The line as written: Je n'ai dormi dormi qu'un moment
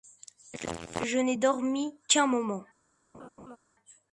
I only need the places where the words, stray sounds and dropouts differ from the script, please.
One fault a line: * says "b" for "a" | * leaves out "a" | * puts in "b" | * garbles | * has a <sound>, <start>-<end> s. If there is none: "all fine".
* leaves out "dormi"
* has a laugh, 3.1-3.6 s